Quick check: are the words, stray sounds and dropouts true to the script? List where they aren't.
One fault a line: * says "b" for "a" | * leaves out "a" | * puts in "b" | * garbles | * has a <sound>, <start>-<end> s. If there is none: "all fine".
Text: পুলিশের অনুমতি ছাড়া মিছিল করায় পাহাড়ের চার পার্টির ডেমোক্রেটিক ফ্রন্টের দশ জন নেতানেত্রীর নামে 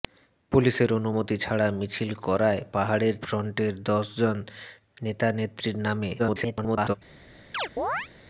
* leaves out "চার পার্টির ডেমোক্রেটিক"
* garbles
* has a chirp, 7.5-8.1 s